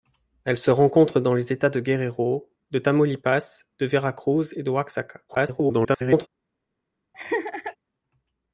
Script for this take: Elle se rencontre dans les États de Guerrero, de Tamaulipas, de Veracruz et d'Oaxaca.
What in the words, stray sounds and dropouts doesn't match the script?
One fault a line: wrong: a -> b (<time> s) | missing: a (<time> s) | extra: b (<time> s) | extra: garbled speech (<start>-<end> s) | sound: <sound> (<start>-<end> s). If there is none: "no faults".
extra: garbled speech (5.3-6.3 s)
sound: laugh (7.1-7.8 s)